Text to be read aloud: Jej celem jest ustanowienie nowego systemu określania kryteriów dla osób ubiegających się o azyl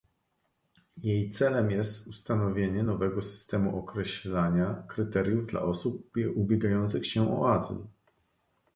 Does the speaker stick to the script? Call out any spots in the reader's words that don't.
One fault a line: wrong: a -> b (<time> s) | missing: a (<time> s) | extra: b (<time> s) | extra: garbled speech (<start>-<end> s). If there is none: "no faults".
no faults